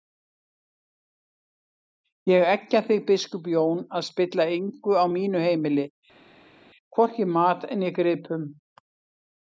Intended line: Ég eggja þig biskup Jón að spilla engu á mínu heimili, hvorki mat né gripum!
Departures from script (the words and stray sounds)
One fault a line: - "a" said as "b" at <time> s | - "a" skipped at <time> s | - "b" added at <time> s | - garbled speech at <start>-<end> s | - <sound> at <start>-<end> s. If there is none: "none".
none